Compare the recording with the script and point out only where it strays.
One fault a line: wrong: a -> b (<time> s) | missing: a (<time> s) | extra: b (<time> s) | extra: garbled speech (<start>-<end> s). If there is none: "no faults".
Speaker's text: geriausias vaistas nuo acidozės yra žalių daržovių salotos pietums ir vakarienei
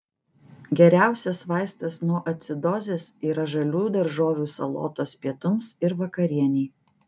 no faults